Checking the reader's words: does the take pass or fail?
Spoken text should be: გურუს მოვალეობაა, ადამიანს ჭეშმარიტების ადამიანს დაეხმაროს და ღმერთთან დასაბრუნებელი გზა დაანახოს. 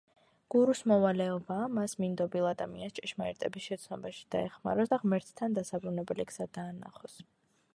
fail